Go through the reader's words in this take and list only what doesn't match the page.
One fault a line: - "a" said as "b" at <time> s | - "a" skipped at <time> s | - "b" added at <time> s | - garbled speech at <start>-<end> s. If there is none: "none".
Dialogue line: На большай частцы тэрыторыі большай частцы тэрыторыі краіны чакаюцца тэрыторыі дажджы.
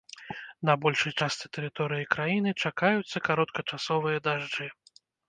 - "большай частцы тэрыторыі" skipped at 2.1 s
- "тэрыторыі" said as "кароткачасовыя" at 3.3 s